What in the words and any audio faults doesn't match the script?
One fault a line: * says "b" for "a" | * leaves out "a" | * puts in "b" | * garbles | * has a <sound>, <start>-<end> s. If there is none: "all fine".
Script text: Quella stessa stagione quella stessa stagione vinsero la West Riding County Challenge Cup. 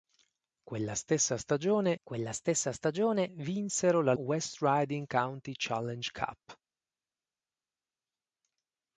all fine